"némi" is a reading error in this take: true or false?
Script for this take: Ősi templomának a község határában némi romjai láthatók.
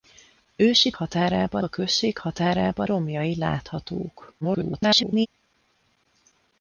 true